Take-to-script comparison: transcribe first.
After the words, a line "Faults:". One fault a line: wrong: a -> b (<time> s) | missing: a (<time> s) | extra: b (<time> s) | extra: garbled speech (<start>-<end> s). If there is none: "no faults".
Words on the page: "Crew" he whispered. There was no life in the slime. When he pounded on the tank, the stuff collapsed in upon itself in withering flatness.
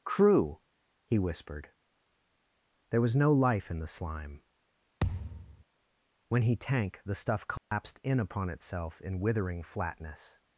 "Crew" he whispered. There was no life in the slime. When he tank, the stuff collapsed in upon itself in withering flatness.
Faults:
missing: pounded on the (6.6 s)